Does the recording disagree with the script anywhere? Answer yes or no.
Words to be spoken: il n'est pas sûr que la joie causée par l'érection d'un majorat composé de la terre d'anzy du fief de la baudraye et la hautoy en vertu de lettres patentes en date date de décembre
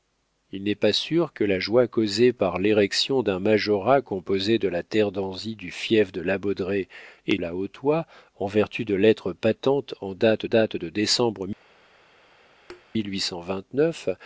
no